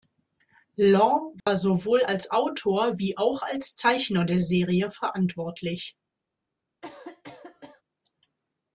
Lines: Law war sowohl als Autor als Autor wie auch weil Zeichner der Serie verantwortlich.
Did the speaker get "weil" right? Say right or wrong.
wrong